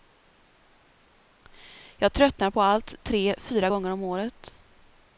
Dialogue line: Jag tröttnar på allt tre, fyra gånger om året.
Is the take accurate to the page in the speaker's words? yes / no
yes